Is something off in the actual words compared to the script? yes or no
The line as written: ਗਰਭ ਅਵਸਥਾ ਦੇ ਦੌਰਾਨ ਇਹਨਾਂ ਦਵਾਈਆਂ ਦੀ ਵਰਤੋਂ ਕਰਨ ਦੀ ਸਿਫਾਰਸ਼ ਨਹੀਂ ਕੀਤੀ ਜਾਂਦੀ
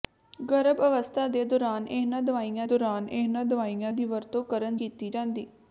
yes